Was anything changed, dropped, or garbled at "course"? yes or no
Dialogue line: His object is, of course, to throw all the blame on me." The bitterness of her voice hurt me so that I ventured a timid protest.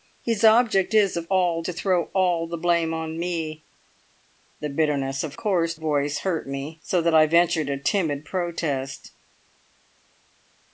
yes